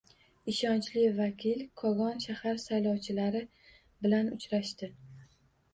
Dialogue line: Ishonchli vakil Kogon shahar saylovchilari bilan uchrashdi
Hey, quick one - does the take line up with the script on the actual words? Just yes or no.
yes